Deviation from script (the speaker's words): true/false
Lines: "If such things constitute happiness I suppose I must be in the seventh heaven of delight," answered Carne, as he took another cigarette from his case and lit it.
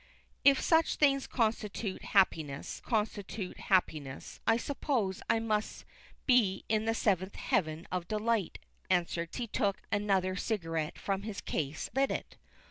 true